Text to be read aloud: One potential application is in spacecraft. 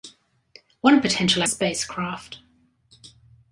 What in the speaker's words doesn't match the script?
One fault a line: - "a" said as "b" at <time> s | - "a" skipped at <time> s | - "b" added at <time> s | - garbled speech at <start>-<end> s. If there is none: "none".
- "application is in" skipped at 1.4 s